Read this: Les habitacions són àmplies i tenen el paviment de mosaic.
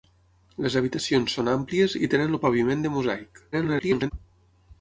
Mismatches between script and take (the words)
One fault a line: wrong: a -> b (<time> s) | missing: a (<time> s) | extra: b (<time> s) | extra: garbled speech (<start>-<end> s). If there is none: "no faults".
extra: garbled speech (3.5-4.1 s)